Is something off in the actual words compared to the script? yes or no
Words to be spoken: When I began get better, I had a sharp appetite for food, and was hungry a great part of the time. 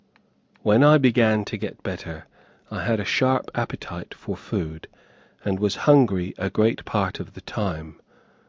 yes